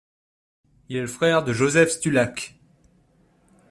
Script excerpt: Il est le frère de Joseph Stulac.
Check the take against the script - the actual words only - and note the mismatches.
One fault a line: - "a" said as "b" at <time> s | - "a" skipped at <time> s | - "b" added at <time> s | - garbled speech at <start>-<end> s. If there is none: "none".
none